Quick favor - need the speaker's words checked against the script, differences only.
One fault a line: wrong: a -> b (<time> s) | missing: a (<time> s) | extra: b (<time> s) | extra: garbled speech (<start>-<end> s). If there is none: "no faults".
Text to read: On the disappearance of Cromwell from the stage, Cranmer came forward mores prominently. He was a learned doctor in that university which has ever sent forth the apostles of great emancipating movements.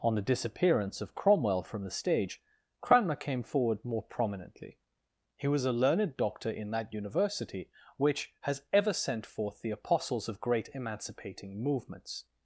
wrong: mores -> more (3.9 s)